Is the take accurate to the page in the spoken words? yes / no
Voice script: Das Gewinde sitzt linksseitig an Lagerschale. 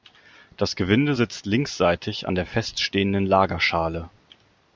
no